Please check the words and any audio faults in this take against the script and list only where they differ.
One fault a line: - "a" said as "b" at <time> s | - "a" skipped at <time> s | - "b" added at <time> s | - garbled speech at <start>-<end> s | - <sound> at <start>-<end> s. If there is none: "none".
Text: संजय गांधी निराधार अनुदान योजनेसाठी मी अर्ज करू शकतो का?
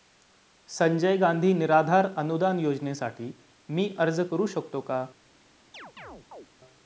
- chirp at 5.7-6.5 s